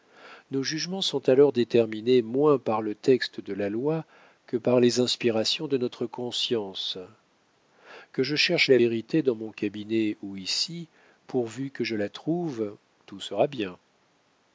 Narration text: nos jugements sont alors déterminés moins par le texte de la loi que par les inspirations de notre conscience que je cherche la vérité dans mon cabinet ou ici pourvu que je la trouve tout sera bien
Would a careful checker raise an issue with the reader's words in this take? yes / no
no